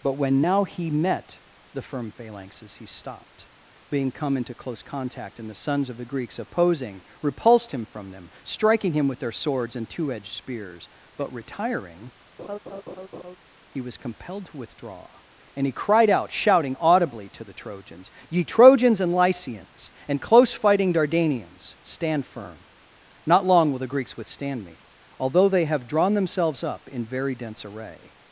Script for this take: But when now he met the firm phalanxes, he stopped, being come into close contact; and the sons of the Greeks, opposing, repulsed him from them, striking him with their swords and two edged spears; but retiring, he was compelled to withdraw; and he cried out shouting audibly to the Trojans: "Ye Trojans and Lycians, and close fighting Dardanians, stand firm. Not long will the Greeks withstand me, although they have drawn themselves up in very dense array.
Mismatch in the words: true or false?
false